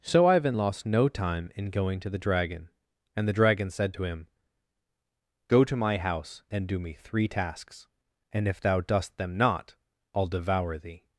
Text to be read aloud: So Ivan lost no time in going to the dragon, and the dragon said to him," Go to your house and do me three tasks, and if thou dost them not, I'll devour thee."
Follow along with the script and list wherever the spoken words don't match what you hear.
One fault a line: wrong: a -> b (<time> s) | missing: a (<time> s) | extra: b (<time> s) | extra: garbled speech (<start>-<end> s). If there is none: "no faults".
wrong: your -> my (5.8 s)